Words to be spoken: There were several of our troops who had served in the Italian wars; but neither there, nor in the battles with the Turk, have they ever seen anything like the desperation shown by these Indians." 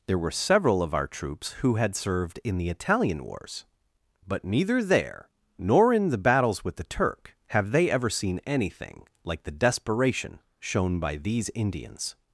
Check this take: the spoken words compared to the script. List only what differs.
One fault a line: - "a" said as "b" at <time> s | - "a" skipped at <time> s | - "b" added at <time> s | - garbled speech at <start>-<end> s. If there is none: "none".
none